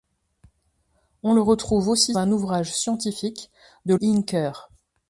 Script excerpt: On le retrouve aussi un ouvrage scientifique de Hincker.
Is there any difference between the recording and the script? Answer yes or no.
no